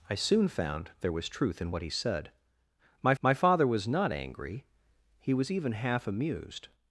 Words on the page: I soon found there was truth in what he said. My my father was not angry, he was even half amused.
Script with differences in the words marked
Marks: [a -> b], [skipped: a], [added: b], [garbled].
I soon found there was truth in what he said. My my father was not angry, he was even half amused.